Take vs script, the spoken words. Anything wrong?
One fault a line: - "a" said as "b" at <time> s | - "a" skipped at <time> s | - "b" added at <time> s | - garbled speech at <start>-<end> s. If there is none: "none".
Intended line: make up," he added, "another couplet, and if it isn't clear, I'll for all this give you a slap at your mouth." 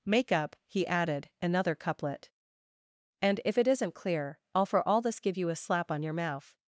- "at" said as "on" at 5.9 s